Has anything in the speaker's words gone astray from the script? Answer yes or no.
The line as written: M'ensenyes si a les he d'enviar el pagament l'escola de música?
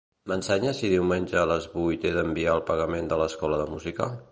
yes